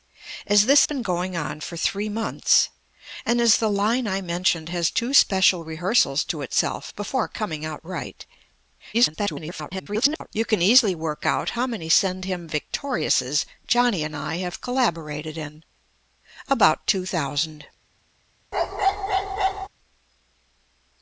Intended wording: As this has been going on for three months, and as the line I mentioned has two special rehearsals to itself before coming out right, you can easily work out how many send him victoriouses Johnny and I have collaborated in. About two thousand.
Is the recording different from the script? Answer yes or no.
yes